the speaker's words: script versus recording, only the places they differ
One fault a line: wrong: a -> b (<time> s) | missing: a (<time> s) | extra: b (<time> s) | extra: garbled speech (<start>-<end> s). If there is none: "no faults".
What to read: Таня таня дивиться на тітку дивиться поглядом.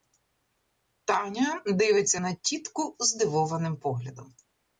missing: таня (1.6 s)
wrong: дивиться -> здивованим (3.0 s)